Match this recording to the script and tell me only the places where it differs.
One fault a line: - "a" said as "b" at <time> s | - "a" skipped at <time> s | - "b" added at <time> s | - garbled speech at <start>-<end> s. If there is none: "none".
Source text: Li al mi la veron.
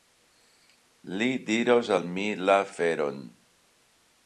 - "diros" added at 1.5 s